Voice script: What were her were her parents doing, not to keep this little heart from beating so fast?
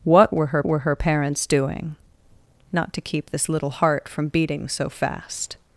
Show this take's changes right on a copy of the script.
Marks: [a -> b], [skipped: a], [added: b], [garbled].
What were her were her parents doing, not to keep this little heart from beating so fast?